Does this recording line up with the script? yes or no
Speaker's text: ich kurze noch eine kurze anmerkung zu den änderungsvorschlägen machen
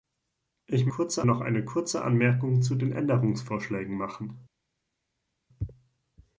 yes